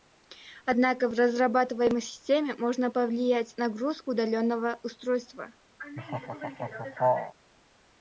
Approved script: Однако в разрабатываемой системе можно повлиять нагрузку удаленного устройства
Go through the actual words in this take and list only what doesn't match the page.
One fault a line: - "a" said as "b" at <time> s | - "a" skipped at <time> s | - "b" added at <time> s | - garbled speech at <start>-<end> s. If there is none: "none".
none